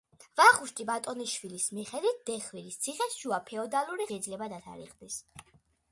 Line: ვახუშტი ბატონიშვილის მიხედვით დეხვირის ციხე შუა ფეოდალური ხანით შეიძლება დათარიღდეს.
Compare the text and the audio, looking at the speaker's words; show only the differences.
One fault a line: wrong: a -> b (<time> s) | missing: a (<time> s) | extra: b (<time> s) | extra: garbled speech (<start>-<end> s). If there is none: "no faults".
missing: ხანით (4.1 s)